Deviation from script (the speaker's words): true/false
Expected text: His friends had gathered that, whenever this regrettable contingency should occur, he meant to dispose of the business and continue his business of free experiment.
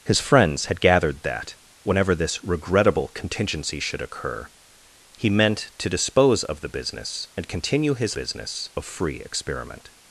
false